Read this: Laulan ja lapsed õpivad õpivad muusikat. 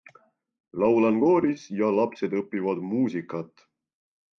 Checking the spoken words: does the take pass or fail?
fail